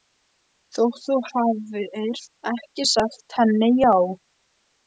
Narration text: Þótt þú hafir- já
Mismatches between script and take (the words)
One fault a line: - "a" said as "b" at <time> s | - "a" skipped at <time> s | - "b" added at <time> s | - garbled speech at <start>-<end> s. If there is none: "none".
- "ekki sagt henni" added at 2.5 s